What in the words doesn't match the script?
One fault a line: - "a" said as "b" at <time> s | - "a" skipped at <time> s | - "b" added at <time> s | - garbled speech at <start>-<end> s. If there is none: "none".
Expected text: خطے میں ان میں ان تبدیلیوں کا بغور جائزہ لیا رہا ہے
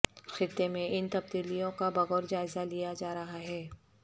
- "میں ان" skipped at 1.1 s
- "جا" added at 3.0 s